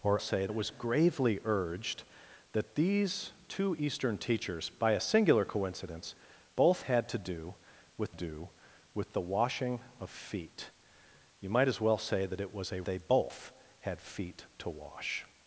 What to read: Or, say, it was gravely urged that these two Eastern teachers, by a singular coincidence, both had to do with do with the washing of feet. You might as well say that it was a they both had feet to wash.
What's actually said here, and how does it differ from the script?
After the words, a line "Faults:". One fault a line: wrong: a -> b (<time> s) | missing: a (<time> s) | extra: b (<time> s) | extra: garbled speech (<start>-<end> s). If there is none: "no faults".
Or, say, it was gravely urged that these two Eastern teachers, by a singular coincidence, both had to do with do with the washing of feet. You might as well say that it was a they both had feet to wash.
Faults:
no faults